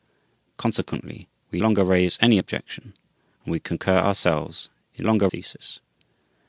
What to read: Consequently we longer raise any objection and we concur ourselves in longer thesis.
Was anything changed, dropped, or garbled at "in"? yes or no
no